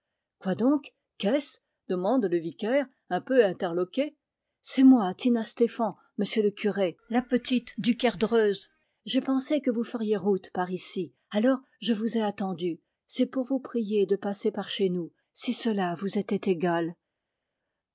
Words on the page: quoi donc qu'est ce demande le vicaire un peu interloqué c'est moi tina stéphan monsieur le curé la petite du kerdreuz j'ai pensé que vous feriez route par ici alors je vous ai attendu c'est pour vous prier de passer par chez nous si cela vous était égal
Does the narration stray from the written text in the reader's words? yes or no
no